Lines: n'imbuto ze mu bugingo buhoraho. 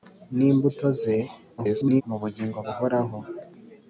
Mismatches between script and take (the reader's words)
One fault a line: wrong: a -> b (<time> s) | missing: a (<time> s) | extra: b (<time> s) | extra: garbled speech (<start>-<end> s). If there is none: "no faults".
extra: garbled speech (1.6-2.0 s)